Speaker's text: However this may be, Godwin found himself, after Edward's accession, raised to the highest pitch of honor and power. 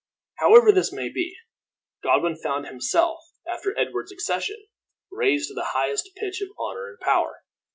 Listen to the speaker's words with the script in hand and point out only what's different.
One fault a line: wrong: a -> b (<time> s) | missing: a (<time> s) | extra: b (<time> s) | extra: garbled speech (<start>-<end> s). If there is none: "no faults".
no faults